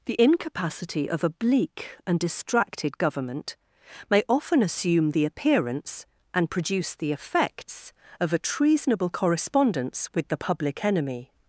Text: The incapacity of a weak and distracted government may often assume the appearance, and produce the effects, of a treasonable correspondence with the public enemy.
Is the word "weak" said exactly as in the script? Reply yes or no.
no